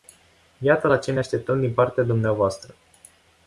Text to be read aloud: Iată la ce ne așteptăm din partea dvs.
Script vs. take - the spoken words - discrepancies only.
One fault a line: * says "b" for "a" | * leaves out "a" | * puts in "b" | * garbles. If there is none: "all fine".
all fine